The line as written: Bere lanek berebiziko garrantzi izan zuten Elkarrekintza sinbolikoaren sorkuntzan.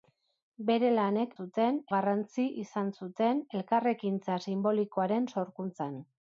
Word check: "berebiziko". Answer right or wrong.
wrong